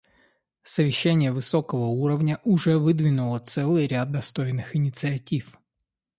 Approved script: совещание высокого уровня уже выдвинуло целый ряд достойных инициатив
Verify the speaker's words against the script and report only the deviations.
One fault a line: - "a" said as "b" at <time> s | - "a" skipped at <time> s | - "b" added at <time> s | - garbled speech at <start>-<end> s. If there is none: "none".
none